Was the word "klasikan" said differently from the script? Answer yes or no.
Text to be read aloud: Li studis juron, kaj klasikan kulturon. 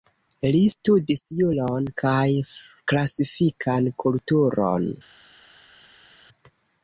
no